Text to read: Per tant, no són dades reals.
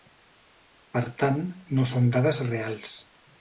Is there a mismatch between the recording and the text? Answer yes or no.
no